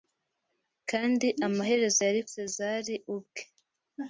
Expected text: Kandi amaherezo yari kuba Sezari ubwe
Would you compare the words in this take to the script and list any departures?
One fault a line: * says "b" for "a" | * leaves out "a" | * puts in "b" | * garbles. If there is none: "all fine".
* leaves out "kuba"